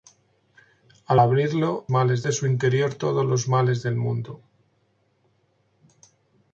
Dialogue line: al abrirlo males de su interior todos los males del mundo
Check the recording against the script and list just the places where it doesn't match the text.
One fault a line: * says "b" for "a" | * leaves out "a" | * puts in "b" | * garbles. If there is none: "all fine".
all fine